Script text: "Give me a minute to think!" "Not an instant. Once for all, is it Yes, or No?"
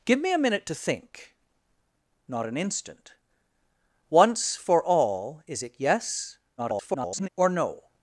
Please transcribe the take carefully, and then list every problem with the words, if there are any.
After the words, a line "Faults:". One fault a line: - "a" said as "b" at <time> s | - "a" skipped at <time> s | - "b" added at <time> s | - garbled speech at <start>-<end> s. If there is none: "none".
"Give me a minute to think!" "Not an instant. Once for all, is it Yes, [garbled] or No?"
Faults:
- garbled speech at 6.6-7.3 s